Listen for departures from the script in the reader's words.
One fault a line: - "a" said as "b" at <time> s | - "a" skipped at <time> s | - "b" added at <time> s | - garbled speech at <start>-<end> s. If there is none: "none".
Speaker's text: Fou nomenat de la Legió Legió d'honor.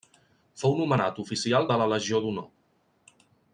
- "oficial" added at 1.2 s
- "Legió" skipped at 2.2 s